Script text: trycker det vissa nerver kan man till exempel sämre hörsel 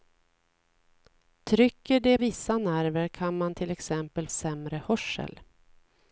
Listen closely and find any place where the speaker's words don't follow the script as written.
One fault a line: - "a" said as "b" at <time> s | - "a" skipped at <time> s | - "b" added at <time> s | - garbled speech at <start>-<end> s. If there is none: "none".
none